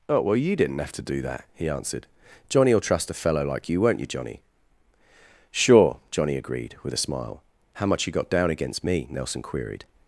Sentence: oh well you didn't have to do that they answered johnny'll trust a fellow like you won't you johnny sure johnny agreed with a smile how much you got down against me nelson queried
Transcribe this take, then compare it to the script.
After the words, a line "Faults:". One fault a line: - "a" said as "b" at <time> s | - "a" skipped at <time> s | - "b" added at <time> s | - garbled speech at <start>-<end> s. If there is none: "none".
oh well you didn't have to do that he answered johnny'll trust a fellow like you won't you johnny sure johnny agreed with a smile how much you got down against me nelson queried
Faults:
- "they" said as "he" at 1.5 s